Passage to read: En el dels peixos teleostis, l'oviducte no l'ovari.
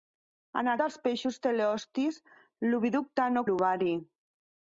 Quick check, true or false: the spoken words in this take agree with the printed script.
true